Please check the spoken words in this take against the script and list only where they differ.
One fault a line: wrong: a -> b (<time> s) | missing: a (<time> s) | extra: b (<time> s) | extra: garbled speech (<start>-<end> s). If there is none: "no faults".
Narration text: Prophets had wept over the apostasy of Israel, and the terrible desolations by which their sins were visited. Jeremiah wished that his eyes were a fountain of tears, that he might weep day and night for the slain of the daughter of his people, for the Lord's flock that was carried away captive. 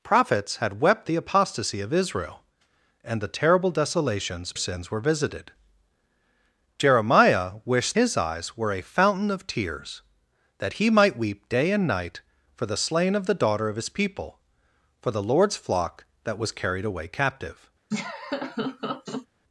missing: over (1.1 s)
missing: by which their (4.5 s)
missing: that (8.0 s)